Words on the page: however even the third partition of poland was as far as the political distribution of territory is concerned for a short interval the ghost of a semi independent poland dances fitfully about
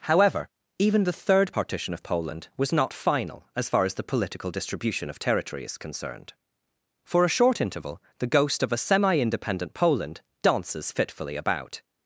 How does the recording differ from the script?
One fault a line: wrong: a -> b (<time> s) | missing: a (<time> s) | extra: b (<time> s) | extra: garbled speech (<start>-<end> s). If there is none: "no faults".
extra: not final (2.7 s)